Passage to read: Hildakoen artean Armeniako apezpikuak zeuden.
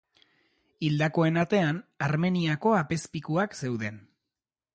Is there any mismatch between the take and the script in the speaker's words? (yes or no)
no